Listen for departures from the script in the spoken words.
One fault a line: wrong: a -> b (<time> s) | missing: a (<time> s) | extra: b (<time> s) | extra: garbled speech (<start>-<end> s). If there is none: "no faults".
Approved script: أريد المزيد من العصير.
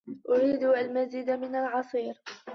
no faults